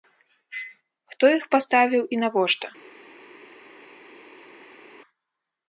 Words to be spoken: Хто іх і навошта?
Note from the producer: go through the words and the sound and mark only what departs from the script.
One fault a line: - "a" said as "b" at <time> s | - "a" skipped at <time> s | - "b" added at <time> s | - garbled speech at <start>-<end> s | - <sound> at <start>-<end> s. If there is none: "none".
- "паставіў" added at 1.6 s